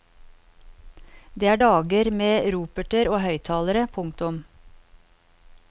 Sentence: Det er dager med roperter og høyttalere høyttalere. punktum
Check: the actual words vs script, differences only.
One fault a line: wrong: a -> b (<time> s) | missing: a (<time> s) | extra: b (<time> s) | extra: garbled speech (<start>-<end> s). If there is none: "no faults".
missing: høyttalere (3.9 s)